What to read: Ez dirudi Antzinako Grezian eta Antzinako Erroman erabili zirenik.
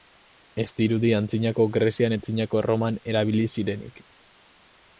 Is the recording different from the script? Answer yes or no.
yes